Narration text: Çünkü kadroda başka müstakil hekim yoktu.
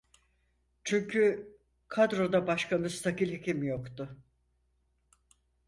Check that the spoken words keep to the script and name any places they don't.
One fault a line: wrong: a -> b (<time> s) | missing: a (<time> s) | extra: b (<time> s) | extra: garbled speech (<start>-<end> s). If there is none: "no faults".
no faults